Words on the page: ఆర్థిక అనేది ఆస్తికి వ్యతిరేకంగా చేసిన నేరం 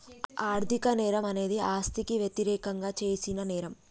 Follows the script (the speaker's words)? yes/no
no